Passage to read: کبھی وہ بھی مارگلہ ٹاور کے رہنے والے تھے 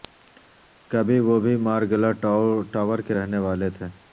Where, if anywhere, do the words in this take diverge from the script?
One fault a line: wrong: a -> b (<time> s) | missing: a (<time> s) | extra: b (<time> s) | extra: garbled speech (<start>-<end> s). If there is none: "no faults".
no faults